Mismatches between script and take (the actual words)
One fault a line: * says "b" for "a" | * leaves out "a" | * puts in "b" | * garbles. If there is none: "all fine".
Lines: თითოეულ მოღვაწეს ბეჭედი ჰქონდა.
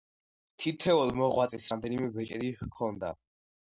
* puts in "რამდენიმე"